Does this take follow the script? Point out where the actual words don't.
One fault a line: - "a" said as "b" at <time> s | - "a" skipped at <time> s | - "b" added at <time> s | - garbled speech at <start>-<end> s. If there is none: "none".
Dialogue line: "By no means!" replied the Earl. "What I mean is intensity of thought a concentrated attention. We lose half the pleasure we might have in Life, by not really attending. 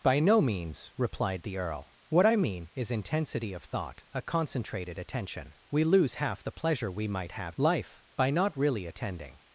- "in" skipped at 7.6 s